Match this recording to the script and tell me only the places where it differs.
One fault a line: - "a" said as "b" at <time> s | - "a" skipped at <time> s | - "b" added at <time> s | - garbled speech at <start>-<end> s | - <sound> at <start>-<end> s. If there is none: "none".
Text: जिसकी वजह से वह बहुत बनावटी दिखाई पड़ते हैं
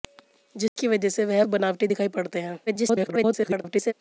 - dropout at 0.7-0.8 s
- "बहुत" skipped at 1.4 s
- garbled speech at 2.7-3.9 s